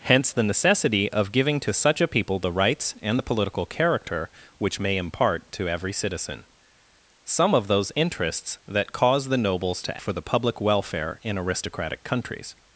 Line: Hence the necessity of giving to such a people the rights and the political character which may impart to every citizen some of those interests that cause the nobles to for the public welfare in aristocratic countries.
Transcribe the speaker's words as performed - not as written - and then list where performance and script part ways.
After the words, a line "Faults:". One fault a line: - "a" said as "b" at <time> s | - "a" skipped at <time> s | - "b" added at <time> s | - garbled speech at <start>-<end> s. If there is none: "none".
Hence the necessity of giving to such a people the rights and the political character which may impart to every citizen some of those interests that cause the nobles to for the public welfare in aristocratic countries.
Faults:
none